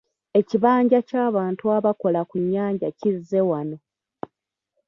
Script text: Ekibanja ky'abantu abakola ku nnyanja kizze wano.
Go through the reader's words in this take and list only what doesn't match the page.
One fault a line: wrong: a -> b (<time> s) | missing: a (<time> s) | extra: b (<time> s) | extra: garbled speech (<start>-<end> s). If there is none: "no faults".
no faults